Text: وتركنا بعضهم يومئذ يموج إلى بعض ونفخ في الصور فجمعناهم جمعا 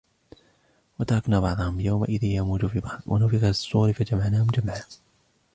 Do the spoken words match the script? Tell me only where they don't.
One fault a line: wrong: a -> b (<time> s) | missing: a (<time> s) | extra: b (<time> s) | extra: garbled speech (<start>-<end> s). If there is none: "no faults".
wrong: إلى -> في (2.6 s)